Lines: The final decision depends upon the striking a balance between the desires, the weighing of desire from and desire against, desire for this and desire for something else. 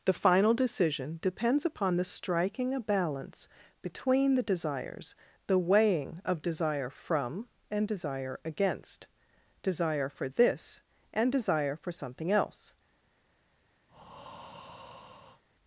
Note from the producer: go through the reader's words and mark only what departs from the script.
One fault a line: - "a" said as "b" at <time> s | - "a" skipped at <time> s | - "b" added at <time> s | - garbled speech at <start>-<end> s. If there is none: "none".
none